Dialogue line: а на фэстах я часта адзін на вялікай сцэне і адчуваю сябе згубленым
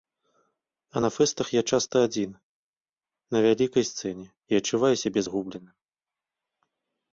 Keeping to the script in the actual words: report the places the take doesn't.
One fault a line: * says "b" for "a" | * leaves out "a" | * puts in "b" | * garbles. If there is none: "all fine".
all fine